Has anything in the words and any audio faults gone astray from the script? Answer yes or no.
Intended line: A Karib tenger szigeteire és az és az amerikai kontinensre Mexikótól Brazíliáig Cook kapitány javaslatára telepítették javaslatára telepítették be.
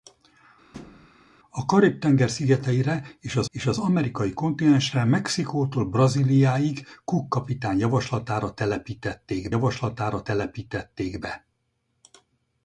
yes